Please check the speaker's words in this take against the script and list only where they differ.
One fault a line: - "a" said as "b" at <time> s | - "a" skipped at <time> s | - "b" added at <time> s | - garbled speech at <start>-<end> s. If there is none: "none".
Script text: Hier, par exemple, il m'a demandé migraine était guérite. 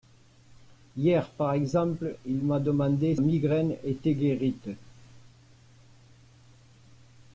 none